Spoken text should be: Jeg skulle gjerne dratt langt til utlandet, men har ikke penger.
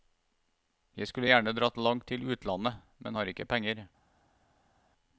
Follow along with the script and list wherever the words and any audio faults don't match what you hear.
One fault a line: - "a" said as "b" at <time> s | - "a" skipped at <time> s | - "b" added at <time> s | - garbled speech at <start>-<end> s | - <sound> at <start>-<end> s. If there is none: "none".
none